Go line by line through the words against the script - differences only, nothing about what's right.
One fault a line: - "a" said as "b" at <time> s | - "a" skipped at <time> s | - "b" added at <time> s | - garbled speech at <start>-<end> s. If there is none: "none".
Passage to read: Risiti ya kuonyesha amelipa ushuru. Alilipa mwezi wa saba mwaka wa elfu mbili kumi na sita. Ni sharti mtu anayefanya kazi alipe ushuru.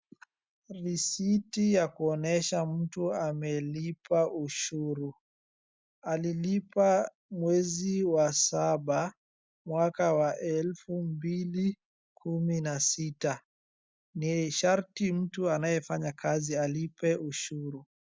- "mtu" added at 2.6 s